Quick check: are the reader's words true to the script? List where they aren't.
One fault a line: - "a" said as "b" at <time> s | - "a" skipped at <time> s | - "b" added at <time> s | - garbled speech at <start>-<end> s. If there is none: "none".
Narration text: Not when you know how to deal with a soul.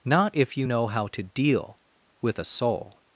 - "when" said as "if" at 0.3 s